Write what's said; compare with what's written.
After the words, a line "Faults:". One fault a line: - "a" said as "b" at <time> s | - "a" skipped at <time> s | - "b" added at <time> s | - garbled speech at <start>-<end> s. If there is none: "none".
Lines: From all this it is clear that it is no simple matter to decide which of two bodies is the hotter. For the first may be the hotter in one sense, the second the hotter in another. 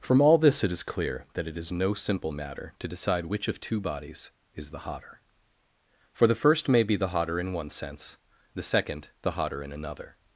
From all this it is clear that it is no simple matter to decide which of two bodies is the hotter. For the first may be the hotter in one sense, the second the hotter in another.
Faults:
none